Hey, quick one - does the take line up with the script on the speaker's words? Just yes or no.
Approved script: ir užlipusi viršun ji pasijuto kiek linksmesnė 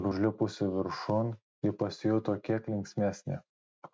yes